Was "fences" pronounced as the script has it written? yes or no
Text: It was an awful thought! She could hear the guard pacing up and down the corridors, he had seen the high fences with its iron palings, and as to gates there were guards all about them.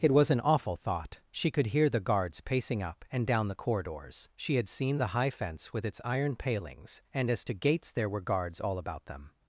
no